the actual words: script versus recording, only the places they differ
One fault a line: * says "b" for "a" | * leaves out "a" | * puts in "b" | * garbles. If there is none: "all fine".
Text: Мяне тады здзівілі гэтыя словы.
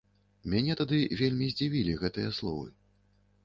* puts in "вельмі"